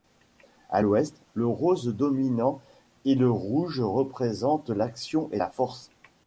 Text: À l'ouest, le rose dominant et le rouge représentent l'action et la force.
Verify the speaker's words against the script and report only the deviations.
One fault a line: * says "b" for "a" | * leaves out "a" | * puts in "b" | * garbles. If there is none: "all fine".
all fine